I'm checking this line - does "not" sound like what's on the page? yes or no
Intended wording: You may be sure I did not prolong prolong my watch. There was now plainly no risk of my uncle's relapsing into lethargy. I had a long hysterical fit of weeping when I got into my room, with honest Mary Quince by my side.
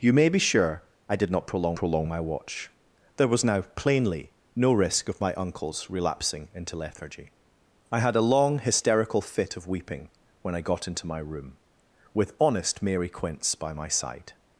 yes